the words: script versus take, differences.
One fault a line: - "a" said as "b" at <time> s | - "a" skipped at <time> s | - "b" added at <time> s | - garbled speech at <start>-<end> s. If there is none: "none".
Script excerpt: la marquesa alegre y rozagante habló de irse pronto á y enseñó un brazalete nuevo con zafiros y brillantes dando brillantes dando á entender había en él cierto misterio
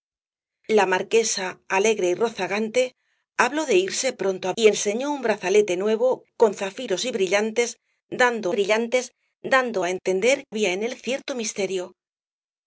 none